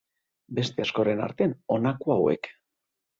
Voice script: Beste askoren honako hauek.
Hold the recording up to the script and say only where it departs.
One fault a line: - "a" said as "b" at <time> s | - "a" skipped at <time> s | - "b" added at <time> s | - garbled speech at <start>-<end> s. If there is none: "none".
- "artean" added at 1.2 s